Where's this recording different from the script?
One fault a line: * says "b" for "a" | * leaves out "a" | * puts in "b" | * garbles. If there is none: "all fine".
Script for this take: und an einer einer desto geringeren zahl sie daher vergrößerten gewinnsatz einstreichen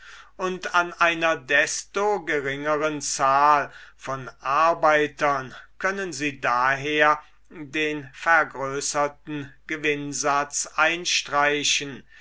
* leaves out "einer"
* puts in "von arbeitern können"
* puts in "den"